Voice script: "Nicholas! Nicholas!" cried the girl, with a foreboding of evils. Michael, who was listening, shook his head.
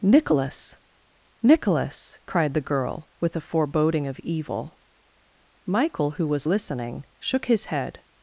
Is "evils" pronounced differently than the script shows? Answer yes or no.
yes